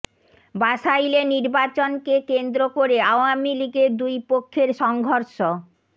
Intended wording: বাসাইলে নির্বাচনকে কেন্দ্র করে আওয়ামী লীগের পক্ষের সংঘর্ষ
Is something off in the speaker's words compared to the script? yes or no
yes